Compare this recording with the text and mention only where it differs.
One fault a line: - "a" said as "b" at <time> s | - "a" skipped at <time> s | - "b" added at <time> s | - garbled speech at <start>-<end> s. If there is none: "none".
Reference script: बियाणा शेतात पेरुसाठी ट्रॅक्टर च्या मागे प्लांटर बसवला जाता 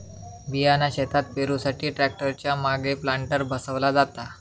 none